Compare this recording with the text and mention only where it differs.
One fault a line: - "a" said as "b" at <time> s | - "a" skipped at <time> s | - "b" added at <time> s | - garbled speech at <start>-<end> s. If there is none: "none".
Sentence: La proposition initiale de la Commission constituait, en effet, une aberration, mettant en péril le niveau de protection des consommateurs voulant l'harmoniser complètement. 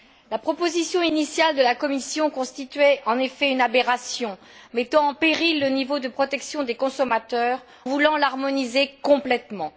none